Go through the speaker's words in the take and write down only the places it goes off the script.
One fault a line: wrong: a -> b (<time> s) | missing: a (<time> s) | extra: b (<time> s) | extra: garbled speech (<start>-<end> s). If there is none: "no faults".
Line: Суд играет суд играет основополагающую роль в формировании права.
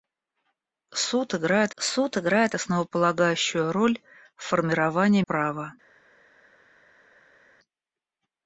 no faults